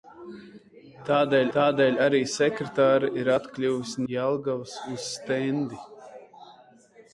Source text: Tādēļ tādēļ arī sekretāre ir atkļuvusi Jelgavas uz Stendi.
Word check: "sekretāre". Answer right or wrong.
right